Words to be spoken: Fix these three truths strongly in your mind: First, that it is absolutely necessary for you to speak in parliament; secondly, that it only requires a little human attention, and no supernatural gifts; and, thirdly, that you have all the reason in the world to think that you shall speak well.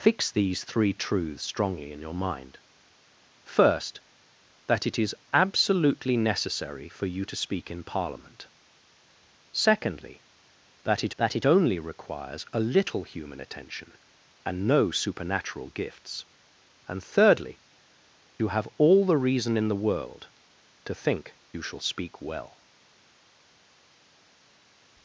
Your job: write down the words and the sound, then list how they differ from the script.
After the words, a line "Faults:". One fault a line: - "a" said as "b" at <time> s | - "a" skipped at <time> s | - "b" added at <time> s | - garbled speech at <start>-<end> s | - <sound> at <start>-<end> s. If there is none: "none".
Fix these three truths strongly in your mind: First, that it is absolutely necessary for you to speak in parliament; secondly, that it that it only requires a little human attention, and no supernatural gifts; and, thirdly, you have all the reason in the world to think you shall speak well.
Faults:
- "that it" added at 11.2 s
- "that" skipped at 17.6 s
- "that" skipped at 21.4 s